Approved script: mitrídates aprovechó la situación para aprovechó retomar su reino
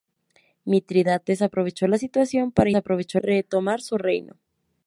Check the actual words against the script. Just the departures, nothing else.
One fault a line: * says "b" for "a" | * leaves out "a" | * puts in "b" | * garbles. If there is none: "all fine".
all fine